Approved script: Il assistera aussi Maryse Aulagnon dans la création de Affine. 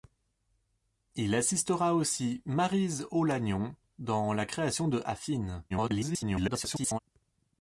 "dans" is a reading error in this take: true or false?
false